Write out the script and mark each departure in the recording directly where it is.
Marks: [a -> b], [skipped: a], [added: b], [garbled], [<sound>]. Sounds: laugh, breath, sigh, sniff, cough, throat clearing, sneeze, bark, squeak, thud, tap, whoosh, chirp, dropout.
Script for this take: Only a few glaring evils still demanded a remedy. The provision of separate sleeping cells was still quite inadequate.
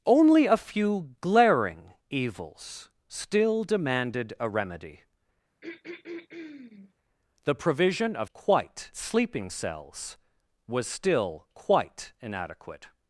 Only a few glaring evils still demanded a remedy. [throat clearing] The provision of [separate -> quite] sleeping cells was still quite inadequate.